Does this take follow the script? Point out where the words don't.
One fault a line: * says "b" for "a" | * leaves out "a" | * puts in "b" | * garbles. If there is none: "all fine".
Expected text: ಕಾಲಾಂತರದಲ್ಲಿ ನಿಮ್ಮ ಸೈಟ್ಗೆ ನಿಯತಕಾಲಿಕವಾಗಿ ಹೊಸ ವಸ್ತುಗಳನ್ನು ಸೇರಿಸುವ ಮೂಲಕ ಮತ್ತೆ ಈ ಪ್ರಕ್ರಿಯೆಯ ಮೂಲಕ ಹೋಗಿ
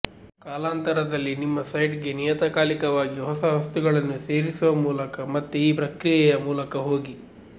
all fine